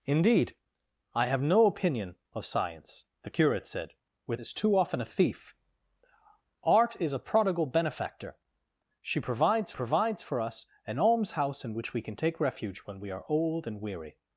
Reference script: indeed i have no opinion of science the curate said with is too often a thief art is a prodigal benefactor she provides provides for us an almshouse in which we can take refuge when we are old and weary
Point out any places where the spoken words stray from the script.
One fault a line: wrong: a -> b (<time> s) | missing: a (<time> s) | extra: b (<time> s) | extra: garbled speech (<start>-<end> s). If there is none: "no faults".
no faults